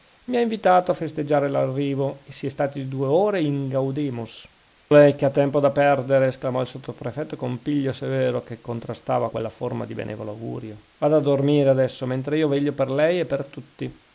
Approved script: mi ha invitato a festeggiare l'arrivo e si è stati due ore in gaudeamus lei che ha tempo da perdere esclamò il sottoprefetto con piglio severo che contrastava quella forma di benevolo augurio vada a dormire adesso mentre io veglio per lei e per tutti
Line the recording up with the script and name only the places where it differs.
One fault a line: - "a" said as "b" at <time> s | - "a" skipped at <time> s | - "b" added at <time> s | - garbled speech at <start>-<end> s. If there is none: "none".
none